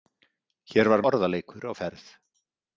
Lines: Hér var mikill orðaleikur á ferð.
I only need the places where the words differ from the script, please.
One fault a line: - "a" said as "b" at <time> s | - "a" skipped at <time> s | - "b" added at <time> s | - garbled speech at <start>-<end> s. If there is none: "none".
- "mikill" skipped at 1.0 s